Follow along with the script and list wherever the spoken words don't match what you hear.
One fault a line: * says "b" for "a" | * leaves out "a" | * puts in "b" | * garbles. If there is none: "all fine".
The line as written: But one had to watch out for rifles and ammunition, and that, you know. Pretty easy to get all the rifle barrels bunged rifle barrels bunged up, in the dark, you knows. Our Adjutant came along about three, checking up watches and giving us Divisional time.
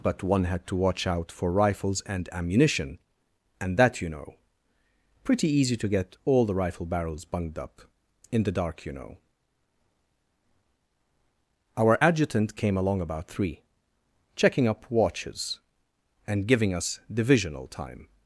* leaves out "rifle barrels bunged"
* says "know" for "knows"